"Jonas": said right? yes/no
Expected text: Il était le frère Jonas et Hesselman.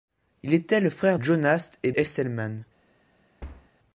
yes